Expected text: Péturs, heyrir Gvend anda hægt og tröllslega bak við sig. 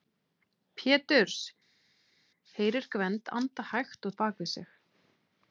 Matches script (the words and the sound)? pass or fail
fail